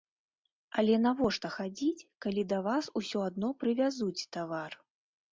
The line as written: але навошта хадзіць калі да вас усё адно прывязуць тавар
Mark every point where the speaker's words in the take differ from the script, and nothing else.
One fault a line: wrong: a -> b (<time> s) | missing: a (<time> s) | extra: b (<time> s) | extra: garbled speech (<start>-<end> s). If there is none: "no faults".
no faults